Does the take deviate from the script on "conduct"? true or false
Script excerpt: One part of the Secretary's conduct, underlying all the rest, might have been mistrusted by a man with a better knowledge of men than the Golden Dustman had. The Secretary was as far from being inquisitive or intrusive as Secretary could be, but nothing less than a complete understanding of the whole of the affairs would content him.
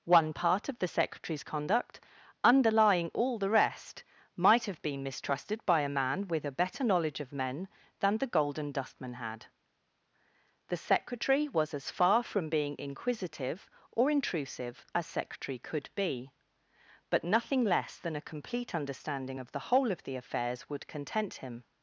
false